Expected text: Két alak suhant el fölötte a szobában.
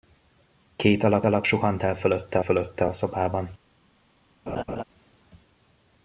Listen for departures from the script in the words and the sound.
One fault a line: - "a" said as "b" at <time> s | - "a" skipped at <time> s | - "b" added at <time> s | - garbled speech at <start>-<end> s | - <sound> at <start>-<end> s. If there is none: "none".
- "alak" added at 1.2 s
- "fölötte" added at 2.4 s
- laugh at 4.5-4.8 s